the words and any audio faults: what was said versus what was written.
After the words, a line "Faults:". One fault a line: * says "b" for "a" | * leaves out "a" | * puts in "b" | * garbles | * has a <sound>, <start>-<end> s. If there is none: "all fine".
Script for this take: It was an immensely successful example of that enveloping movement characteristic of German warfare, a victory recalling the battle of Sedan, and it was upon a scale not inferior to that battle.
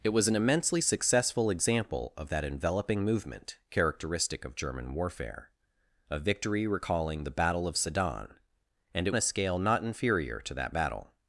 It was an immensely successful example of that enveloping movement characteristic of German warfare, a victory recalling the battle of Sedan, and it a scale not inferior to that battle.
Faults:
* leaves out "was upon"